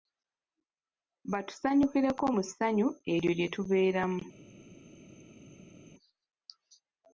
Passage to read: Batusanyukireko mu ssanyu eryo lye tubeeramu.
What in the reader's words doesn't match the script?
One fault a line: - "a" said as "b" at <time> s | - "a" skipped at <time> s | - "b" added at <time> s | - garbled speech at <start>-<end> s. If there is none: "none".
none